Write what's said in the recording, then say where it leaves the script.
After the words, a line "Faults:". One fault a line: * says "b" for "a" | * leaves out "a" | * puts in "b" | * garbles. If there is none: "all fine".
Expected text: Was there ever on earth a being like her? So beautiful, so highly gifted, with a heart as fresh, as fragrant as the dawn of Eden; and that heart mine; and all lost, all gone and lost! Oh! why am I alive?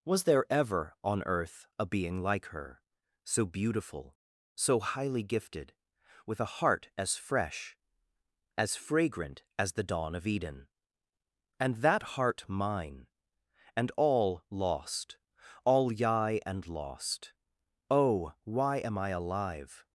Was there ever on earth a being like her? So beautiful, so highly gifted, with a heart as fresh, as fragrant as the dawn of Eden; and that heart mine; and all lost, all yai and lost! Oh! why am I alive?
Faults:
* says "yai" for "gone"